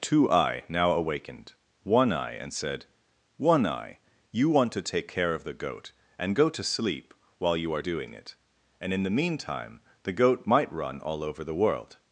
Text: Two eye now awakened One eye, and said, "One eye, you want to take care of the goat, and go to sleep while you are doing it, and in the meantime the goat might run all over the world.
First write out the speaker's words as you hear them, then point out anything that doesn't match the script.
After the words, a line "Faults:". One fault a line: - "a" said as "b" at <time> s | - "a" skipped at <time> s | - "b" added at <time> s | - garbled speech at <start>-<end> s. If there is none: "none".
Two eye now awakened One eye, and said, "One eye, you want to take care of the goat, and go to sleep while you are doing it, and in the meantime the goat might run all over the world.
Faults:
none